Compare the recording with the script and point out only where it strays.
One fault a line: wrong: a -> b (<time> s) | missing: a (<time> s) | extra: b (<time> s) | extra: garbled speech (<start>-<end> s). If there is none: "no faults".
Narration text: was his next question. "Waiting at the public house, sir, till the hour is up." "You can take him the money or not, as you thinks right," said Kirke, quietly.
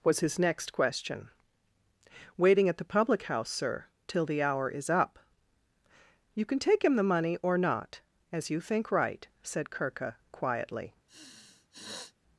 wrong: thinks -> think (8.6 s)